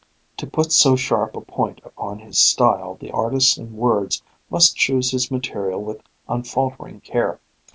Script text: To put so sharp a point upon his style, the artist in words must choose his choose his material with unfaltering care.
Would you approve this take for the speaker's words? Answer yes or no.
no